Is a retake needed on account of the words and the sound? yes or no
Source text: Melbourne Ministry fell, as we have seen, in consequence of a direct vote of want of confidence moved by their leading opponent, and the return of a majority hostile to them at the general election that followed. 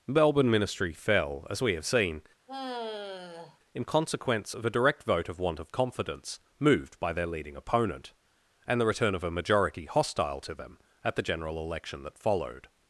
yes